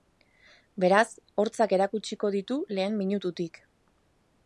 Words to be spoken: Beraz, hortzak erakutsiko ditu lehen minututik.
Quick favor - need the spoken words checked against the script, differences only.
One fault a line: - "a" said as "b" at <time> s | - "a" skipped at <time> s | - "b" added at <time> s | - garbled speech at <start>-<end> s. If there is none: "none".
none